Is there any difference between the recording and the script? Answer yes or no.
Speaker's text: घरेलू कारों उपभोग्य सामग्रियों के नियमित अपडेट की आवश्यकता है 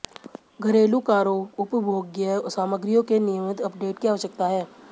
no